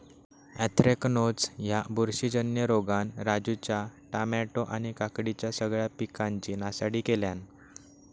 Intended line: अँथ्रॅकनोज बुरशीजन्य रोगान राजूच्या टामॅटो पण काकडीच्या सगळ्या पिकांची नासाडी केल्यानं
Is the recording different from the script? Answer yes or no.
yes